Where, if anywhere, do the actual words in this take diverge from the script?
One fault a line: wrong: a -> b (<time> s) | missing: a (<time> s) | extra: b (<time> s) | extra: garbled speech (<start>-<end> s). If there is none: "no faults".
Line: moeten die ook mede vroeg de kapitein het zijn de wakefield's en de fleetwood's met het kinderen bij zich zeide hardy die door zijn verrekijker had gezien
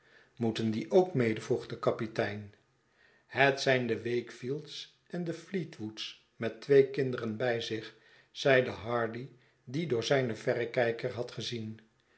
wrong: het -> twee (6.6 s)